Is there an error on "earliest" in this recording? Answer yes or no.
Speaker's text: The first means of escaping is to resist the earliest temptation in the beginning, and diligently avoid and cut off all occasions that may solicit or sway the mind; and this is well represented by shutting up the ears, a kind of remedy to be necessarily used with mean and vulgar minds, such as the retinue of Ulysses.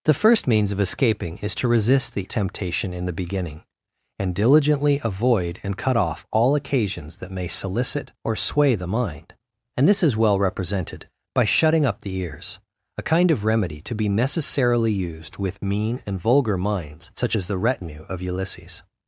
yes